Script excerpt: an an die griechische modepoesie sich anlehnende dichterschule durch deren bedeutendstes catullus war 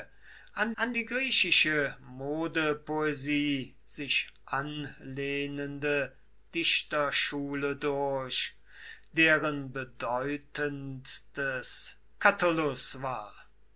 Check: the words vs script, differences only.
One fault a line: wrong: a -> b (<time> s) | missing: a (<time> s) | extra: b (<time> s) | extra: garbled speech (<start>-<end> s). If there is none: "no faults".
no faults